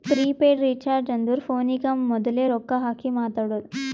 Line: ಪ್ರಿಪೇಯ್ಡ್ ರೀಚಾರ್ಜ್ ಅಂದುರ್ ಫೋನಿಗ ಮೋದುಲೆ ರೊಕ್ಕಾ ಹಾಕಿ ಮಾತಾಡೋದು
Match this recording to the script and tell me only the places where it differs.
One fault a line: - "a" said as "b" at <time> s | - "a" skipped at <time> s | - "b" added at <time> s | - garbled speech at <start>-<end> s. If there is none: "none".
none